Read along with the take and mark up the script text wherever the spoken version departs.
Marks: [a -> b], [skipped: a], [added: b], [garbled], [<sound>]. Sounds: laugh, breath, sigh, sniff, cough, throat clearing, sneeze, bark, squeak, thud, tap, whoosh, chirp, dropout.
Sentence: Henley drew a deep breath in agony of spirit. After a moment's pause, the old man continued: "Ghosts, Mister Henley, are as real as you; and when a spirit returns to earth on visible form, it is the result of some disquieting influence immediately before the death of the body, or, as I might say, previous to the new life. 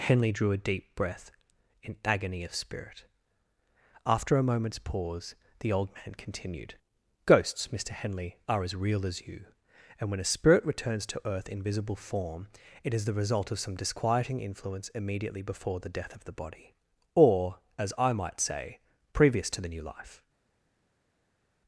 Henley drew a deep breath in agony of spirit. After a moment's pause, the old man continued: "Ghosts, Mister Henley, are as real as you; and when a spirit returns to earth [on -> in] visible form, it is the result of some disquieting influence immediately before the death of the body, or, as I might say, previous to the new life.